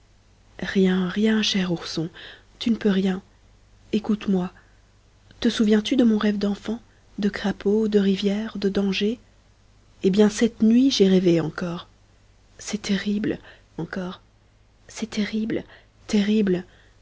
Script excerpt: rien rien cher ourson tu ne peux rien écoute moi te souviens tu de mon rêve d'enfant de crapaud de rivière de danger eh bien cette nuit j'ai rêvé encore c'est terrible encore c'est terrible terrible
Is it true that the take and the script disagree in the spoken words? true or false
false